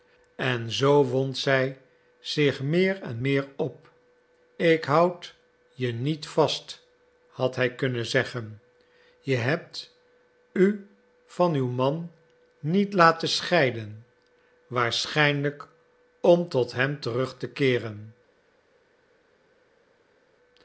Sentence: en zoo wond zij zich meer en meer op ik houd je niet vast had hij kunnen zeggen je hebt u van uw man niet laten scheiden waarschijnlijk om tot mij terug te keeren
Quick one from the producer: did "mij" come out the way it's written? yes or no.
no